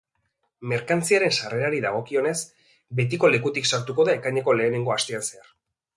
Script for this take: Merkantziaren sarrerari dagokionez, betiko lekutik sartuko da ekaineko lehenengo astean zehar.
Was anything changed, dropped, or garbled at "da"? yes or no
no